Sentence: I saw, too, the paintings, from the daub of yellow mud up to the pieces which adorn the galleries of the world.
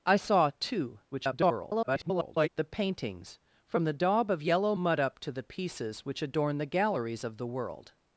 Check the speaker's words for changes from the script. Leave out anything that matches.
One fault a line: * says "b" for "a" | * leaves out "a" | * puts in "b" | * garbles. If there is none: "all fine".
* garbles